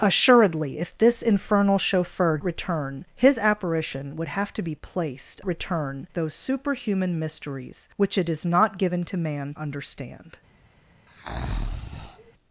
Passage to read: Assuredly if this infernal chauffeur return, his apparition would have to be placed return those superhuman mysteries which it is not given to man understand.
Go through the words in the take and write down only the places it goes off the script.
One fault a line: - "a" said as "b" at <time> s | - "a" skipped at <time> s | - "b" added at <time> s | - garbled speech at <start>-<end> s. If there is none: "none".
none